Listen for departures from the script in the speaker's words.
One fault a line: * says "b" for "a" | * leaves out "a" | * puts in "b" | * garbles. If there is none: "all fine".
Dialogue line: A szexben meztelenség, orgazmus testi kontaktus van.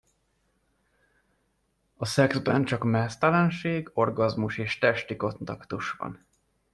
* puts in "csak"
* puts in "és"